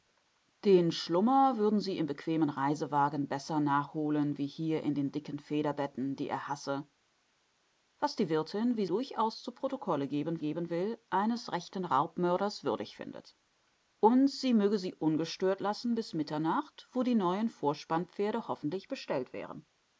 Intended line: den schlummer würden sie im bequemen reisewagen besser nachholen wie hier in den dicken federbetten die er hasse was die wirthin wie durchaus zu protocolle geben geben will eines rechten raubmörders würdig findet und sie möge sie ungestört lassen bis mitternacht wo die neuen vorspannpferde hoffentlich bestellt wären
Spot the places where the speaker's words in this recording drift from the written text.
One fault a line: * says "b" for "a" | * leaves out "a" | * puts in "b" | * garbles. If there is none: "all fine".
all fine